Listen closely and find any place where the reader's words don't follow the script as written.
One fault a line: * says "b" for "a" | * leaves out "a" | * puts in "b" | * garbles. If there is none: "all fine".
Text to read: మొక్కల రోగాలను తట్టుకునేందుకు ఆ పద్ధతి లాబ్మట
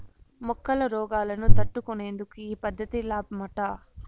* says "ఈ" for "ఆ"